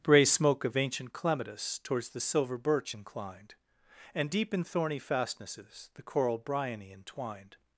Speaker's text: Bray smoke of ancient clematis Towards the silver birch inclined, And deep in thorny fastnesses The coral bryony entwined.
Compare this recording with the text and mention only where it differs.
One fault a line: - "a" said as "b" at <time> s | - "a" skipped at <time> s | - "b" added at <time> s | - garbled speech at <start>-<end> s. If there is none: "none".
none